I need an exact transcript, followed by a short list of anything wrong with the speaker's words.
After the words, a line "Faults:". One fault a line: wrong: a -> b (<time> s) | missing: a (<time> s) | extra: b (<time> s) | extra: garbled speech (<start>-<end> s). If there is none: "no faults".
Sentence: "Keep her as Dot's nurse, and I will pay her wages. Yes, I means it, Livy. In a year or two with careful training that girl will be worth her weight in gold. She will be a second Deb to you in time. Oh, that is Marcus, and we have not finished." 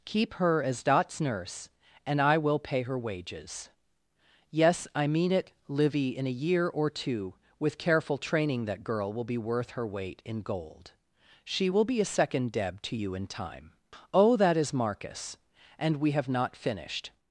"Keep her as Dot's nurse, and I will pay her wages. Yes, I mean it, Livy. In a year or two with careful training that girl will be worth her weight in gold. She will be a second Deb to you in time. Oh, that is Marcus, and we have not finished."
Faults:
wrong: means -> mean (5.0 s)